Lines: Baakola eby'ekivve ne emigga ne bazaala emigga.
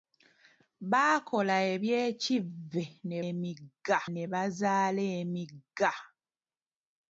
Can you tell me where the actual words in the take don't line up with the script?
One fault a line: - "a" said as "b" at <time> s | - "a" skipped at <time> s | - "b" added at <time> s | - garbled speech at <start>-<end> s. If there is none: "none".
none